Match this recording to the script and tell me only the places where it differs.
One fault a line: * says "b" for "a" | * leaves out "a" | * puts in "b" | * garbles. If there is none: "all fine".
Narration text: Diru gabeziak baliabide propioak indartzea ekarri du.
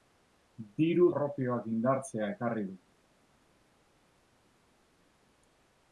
* leaves out "gabeziak baliabide"